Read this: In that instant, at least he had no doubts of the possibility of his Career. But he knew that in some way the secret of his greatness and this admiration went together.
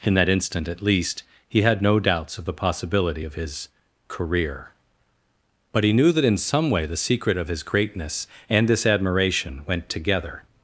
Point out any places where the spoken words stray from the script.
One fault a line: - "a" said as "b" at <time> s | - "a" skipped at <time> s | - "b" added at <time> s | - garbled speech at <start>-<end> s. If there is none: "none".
none